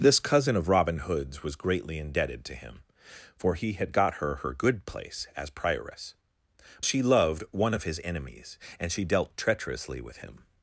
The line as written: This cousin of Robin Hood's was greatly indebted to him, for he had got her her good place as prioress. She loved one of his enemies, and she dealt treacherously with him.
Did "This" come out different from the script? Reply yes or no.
no